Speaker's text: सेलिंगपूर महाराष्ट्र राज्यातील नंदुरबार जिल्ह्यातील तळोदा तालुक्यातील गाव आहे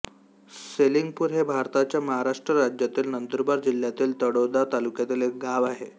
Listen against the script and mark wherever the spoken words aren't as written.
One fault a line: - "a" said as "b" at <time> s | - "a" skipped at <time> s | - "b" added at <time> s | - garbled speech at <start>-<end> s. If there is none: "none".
- "हे भारताच्या" added at 1.3 s
- "एक" added at 5.2 s